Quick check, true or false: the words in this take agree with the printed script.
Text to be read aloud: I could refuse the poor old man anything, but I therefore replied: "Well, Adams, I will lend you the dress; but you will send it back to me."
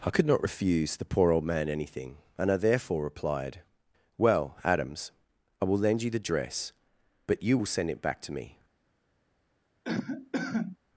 false